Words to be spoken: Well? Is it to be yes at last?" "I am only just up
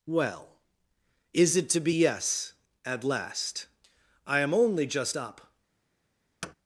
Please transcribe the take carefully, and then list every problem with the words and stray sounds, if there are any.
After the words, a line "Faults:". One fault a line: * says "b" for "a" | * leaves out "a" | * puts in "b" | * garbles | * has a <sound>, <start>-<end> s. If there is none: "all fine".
Well? Is it to be yes at last?" "I am only just up
Faults:
* has a thud, 6.4-6.5 s